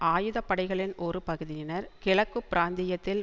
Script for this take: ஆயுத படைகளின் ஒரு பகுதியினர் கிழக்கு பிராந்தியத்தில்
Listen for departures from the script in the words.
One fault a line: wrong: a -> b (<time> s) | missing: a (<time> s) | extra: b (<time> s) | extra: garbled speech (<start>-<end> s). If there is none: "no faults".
no faults